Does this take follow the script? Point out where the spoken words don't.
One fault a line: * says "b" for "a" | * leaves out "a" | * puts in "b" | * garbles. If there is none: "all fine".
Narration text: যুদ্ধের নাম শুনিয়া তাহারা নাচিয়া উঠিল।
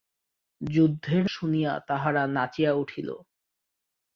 * leaves out "নাম"